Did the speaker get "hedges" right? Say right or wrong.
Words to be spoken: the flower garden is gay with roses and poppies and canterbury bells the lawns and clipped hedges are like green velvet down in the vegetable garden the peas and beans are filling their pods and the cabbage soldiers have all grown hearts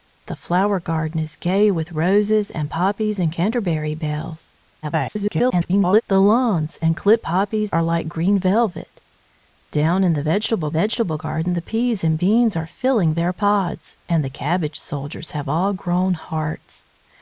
wrong